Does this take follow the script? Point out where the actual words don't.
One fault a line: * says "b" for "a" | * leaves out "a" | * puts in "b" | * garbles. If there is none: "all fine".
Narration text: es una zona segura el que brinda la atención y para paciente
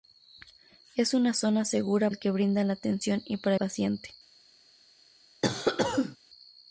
all fine